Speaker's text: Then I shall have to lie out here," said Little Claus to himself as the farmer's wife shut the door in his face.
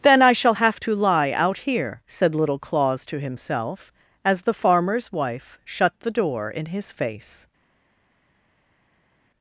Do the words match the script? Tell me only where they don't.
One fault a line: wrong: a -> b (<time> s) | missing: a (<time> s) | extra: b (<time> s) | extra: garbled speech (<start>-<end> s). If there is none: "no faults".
no faults